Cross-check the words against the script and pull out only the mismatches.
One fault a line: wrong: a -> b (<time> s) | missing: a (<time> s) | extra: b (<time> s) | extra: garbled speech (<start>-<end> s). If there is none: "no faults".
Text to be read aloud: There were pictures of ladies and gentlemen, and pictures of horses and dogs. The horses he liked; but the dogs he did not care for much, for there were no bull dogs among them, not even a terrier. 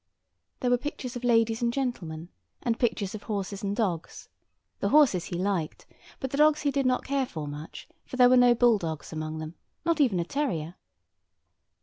no faults